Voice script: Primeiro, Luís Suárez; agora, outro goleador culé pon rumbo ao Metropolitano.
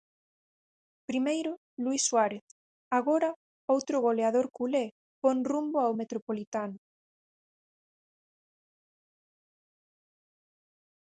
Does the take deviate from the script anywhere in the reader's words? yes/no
no